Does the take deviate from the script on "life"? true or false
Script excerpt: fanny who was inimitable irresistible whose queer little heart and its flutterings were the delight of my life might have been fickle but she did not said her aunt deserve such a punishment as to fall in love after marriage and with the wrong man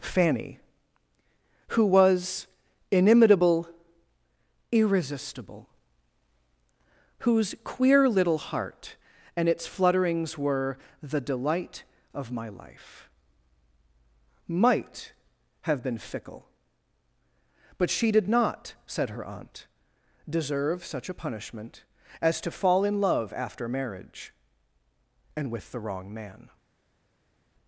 false